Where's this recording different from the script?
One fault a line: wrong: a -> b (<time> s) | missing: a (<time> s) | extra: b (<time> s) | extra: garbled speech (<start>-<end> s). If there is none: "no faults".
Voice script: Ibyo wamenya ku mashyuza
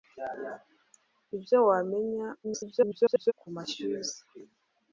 extra: garbled speech (2.4-3.3 s)